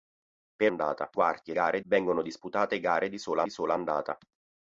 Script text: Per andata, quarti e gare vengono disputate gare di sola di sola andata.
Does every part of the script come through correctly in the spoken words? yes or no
yes